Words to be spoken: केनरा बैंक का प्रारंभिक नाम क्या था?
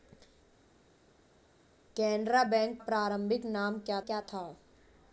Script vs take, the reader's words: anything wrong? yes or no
yes